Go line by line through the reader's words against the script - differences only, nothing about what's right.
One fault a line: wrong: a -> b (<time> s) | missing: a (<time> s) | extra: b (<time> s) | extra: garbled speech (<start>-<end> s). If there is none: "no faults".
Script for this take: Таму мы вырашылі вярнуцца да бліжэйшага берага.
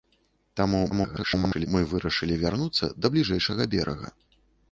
extra: garbled speech (0.9-1.7 s)